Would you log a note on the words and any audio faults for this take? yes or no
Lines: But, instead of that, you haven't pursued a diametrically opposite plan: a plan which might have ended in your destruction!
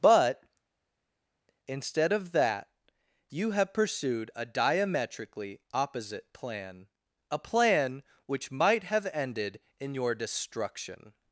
yes